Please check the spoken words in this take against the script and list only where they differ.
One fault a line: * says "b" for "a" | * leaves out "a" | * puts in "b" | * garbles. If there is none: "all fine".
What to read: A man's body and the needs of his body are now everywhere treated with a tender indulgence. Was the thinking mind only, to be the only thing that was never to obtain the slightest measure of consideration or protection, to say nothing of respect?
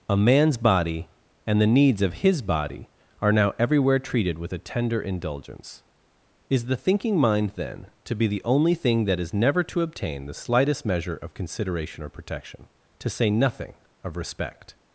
* says "Is" for "Was"
* says "then" for "only"
* says "is" for "was"